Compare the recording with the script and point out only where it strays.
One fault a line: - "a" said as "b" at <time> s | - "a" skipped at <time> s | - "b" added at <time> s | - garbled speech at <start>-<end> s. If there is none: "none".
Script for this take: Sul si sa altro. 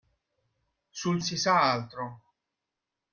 none